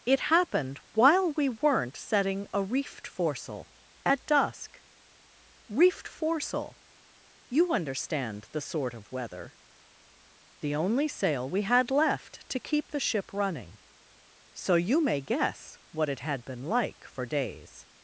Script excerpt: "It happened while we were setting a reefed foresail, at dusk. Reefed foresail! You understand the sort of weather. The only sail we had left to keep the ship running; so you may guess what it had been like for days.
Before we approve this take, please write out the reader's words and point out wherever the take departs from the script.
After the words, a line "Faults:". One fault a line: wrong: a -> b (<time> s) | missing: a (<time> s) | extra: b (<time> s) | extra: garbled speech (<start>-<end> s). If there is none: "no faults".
"It happened while we weren't setting a reefed foresail, at dusk. Reefed foresail! You understand the sort of weather. The only sail we had left to keep the ship running; so you may guess what it had been like for days.
Faults:
wrong: were -> weren't (1.5 s)